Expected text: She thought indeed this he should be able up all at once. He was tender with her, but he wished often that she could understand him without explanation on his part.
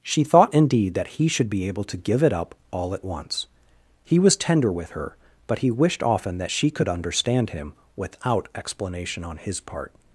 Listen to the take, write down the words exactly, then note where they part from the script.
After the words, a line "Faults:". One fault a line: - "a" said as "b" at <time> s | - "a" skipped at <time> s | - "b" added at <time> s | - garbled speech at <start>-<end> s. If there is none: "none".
She thought indeed that he should be able to give it up all at once. He was tender with her, but he wished often that she could understand him without explanation on his part.
Faults:
- "this" said as "that" at 0.9 s
- "to give it" added at 1.8 s